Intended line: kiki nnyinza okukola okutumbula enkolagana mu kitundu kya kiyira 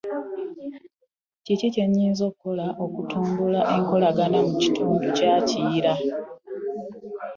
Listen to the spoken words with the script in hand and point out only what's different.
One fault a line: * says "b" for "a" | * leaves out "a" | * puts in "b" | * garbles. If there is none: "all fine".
* puts in "kye"